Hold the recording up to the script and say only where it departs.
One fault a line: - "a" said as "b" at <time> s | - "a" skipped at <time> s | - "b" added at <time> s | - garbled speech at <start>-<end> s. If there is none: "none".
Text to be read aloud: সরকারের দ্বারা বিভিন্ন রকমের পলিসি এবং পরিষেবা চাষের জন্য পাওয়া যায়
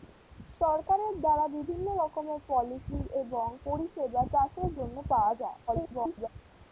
- garbled speech at 5.7-6.3 s